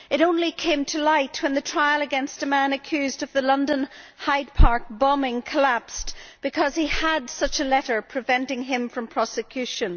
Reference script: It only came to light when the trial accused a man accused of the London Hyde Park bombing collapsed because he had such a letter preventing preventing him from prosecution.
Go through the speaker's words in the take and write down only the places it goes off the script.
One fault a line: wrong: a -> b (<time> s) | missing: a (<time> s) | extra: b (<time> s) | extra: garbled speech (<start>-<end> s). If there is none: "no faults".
wrong: accused -> against (2.0 s)
missing: preventing (8.6 s)